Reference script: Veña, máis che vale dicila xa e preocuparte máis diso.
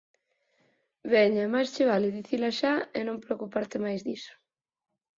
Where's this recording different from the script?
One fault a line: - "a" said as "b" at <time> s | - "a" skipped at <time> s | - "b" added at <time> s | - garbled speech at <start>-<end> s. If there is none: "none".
- "non" added at 3.1 s